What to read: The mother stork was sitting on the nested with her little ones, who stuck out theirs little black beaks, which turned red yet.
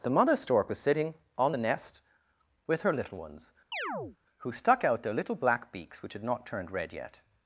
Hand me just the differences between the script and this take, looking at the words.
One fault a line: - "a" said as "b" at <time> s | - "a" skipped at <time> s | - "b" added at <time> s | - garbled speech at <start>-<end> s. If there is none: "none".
- "nested" said as "nest" at 1.6 s
- "theirs" said as "their" at 5.0 s
- "had not" added at 6.1 s